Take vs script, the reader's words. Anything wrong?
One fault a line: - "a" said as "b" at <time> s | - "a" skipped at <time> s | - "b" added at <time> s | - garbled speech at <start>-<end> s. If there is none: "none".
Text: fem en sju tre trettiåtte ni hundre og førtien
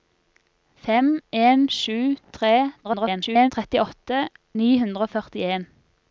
- garbled speech at 2.8-3.5 s